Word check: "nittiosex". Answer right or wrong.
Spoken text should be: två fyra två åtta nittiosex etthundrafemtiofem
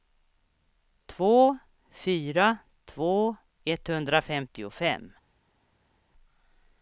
wrong